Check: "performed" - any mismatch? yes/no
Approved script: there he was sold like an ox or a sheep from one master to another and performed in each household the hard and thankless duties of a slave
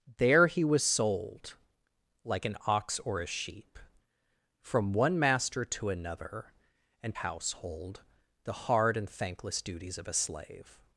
yes